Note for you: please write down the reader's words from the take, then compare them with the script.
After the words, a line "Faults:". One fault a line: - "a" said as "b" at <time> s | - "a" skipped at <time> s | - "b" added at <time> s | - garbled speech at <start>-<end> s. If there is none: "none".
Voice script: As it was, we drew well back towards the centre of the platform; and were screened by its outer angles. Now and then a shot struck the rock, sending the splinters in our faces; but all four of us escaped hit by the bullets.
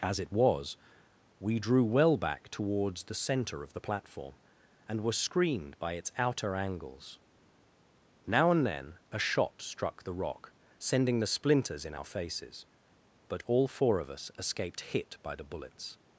As it was, we drew well back towards the centre of the platform; and were screened by its outer angles. Now and then a shot struck the rock, sending the splinters in our faces; but all four of us escaped hit by the bullets.
Faults:
none